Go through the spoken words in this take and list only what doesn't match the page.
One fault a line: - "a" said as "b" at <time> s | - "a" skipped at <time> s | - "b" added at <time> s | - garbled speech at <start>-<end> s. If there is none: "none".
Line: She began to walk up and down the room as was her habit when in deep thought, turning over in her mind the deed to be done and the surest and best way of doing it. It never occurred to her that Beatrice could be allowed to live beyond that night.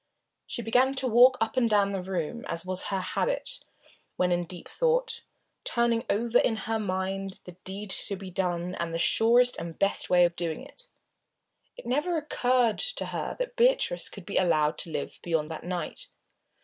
none